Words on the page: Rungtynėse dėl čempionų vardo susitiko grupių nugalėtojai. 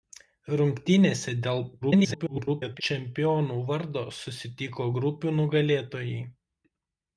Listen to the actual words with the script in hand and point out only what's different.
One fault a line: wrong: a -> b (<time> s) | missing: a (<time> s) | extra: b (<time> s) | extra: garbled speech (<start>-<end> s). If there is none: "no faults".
extra: garbled speech (1.8-2.8 s)